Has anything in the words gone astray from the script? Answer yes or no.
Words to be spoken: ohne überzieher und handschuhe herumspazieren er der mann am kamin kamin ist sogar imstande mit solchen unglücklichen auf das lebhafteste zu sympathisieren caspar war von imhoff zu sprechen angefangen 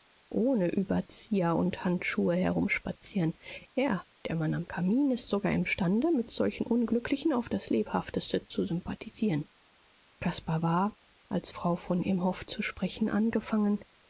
yes